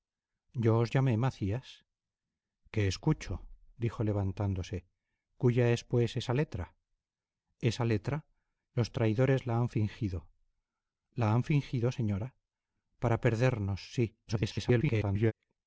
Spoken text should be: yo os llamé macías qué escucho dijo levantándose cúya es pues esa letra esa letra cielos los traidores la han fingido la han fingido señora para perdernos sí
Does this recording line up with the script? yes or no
no